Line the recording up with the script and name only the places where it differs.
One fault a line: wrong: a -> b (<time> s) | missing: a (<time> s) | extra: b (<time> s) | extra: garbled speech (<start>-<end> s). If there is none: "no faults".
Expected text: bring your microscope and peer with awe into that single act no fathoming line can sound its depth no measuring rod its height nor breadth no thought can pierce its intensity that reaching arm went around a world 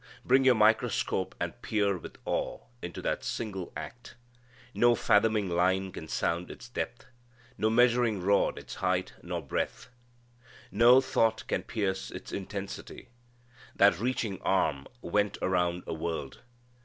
no faults